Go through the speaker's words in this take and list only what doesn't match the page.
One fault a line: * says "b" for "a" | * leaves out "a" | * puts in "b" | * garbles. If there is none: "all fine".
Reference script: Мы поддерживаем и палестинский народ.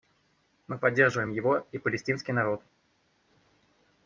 * puts in "его"